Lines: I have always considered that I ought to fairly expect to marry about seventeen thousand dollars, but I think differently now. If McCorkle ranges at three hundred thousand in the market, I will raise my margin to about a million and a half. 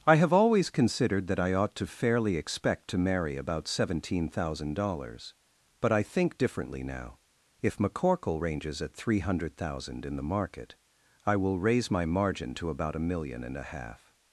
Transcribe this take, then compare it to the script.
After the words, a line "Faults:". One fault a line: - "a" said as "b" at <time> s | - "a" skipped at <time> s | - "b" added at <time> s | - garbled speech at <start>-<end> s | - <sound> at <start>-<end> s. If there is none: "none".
I have always considered that I ought to fairly expect to marry about seventeen thousand dollars, but I think differently now. If McCorkle ranges at three hundred thousand in the market, I will raise my margin to about a million and a half.
Faults:
none